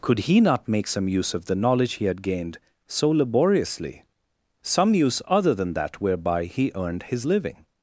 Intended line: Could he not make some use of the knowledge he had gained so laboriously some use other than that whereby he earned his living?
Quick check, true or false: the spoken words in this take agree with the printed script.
true